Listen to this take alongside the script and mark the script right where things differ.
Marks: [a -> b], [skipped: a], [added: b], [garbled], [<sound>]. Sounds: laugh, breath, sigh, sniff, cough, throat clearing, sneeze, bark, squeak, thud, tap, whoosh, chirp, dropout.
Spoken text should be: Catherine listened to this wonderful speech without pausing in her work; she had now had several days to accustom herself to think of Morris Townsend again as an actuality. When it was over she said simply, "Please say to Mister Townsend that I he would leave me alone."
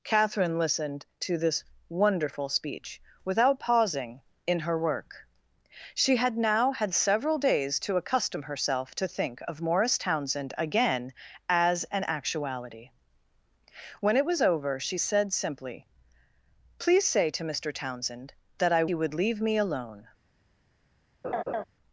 Catherine listened to this wonderful speech without pausing in her work; she had now had several days to accustom herself to think of Morris Townsend again as an actuality. When it was over she said simply, "Please say to Mister Townsend that I he would leave me alone." [laugh]